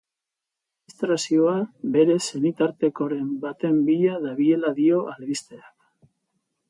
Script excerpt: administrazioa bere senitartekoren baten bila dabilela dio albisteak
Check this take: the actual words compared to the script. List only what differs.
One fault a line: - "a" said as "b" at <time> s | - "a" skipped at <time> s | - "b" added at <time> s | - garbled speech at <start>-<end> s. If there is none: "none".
none